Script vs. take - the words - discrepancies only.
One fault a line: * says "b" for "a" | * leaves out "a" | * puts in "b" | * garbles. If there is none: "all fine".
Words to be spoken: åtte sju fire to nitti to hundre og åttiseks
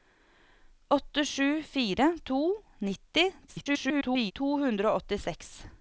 * garbles